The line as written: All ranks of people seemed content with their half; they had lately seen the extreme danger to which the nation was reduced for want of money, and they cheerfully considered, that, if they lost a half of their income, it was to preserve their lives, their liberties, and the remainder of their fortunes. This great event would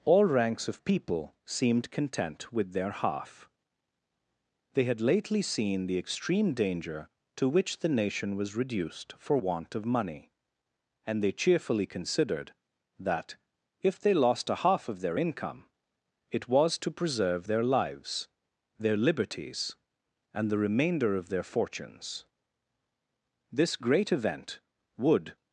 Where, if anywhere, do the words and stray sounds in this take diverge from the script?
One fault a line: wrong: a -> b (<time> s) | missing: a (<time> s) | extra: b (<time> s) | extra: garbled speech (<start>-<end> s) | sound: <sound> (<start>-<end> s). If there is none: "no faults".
no faults